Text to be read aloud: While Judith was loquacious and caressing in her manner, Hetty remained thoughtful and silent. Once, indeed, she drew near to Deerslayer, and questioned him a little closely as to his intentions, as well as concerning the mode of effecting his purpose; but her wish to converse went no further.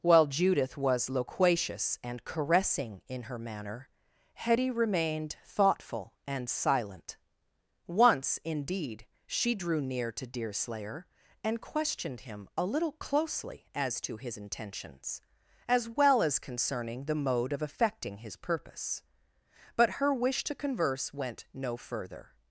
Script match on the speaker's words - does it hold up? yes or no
yes